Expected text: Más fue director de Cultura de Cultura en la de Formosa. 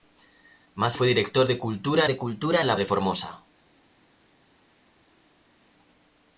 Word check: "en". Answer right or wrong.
right